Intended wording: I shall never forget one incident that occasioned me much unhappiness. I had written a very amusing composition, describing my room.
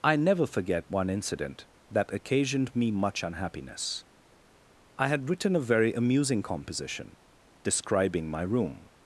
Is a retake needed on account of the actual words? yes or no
yes